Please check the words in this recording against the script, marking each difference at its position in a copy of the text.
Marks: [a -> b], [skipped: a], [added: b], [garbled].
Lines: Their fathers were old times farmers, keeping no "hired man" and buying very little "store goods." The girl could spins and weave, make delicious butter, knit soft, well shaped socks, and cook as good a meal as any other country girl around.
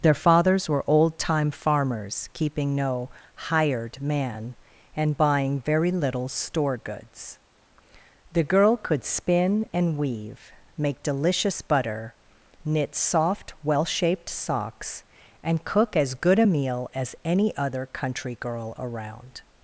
Their fathers were old [times -> time] farmers, keeping no "hired man" and buying very little "store goods." The girl could [spins -> spin] and weave, make delicious butter, knit soft, well shaped socks, and cook as good a meal as any other country girl around.